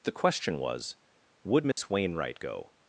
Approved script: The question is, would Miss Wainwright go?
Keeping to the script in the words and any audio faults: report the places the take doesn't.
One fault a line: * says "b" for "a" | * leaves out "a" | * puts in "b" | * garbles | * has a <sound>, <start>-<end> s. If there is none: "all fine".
* says "was" for "is"
* has a dropout, 1.7-1.8 s